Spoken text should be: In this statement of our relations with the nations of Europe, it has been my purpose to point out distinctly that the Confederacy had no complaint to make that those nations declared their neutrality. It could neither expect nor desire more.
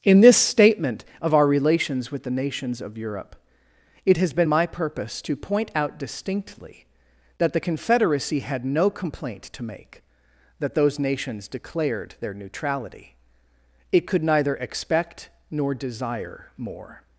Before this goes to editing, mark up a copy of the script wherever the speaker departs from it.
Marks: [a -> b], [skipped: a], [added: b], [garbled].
In this statement of our relations with the nations of Europe, it has been my purpose to point out distinctly that the Confederacy had no complaint to make that those nations declared their neutrality. It could neither expect nor desire more.